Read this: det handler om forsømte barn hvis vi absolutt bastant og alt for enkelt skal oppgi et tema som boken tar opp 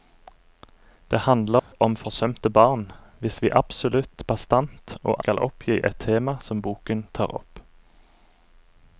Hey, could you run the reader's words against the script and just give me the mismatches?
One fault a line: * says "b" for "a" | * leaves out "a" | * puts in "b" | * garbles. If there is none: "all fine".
* leaves out "alt for enkelt"